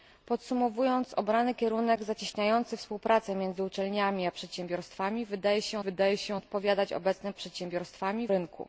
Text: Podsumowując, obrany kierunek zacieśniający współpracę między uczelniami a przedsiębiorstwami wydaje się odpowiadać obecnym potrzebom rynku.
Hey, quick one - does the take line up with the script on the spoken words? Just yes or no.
no